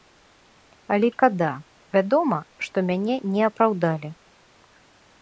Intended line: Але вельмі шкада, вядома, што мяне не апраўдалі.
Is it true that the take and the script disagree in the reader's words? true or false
true